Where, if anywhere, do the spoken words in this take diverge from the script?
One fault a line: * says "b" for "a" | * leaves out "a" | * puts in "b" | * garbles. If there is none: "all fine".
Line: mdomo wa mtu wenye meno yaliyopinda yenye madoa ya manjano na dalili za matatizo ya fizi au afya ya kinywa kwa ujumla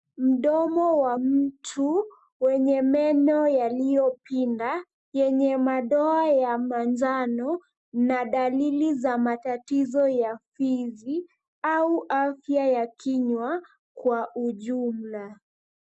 all fine